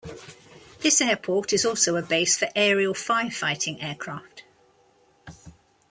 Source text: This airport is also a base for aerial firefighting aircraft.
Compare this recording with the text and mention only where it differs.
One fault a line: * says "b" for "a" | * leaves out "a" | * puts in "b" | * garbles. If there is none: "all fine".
all fine